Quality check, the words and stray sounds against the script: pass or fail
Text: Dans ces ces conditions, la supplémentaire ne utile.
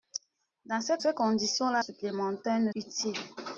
pass